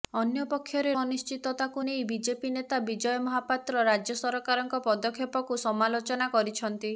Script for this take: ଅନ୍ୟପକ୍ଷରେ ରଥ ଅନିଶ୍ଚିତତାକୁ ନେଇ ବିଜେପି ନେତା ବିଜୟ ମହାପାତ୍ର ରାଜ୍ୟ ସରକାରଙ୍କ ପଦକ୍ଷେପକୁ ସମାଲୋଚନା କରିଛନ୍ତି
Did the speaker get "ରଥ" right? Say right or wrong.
wrong